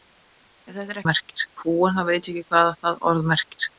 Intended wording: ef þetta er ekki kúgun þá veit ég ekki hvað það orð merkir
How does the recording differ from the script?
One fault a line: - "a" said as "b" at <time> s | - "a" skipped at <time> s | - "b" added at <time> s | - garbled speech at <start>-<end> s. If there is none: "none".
- "ekki" said as "merkir" at 1.1 s